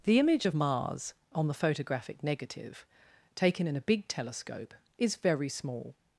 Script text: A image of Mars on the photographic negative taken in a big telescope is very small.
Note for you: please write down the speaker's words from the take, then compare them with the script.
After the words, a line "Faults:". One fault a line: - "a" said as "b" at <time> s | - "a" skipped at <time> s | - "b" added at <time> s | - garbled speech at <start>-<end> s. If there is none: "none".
The image of Mars on the photographic negative taken in a big telescope is very small.
Faults:
- "A" said as "The" at 0.0 s